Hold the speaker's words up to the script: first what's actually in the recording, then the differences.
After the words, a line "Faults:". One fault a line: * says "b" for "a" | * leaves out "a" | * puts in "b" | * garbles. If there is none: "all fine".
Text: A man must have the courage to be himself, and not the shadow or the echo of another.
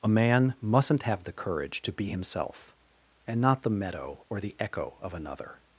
A man mustn't have the courage to be himself, and not the meadow or the echo of another.
Faults:
* says "mustn't" for "must"
* says "meadow" for "shadow"